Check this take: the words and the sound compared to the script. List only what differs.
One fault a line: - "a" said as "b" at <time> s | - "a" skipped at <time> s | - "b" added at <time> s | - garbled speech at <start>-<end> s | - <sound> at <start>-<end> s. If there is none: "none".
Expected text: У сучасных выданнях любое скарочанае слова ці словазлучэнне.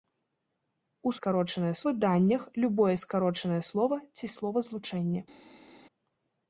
- "сучасных" said as "скарочанае" at 1.2 s